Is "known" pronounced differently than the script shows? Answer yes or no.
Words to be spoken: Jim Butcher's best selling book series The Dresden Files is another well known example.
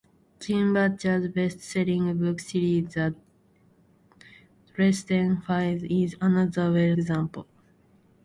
yes